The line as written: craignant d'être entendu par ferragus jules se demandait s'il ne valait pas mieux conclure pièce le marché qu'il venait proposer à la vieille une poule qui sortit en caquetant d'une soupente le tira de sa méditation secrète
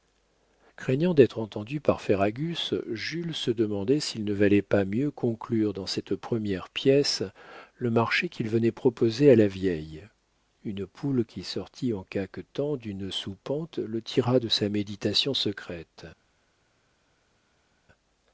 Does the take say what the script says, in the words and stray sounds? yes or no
no